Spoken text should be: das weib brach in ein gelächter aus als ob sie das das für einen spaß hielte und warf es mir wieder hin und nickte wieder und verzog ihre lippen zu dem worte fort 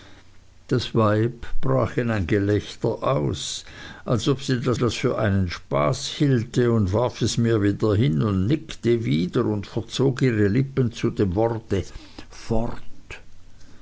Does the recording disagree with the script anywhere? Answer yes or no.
no